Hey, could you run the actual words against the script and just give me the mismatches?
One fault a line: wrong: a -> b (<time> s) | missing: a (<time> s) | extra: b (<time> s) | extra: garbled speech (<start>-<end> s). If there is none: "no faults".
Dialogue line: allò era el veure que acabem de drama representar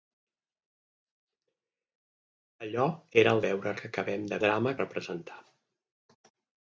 no faults